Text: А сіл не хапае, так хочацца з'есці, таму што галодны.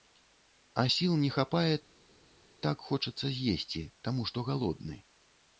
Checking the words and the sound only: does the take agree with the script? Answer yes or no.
yes